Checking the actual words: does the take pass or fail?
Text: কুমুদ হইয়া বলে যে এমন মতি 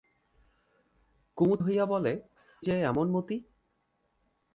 pass